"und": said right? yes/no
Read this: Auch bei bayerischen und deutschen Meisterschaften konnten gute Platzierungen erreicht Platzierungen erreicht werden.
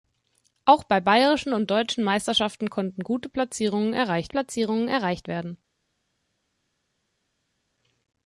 yes